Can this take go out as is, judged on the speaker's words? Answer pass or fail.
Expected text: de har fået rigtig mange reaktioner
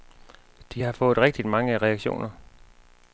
pass